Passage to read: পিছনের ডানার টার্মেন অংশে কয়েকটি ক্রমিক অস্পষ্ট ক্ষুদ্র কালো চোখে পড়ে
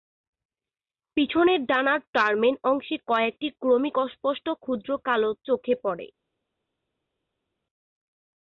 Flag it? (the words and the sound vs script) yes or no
no